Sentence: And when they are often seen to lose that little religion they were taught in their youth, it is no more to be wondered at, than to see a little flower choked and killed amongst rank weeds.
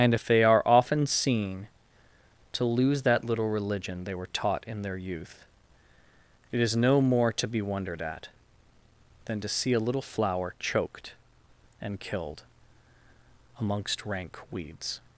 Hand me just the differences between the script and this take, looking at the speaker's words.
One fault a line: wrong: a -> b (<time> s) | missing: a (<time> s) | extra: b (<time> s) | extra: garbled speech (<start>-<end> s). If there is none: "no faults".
wrong: when -> if (0.1 s)